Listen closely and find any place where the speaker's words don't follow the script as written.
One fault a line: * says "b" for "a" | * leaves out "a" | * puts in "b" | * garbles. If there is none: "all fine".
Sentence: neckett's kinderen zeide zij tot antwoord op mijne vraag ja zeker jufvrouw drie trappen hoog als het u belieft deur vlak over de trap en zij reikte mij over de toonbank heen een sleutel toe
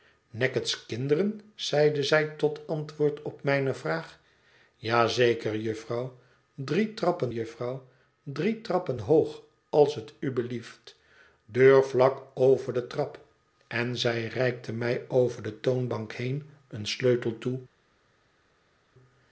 * puts in "jufvrouw drie trappen"